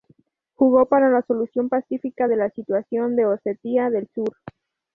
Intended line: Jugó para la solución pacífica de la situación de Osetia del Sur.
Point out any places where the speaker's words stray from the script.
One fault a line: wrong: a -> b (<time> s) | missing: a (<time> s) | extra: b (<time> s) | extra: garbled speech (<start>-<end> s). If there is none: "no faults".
no faults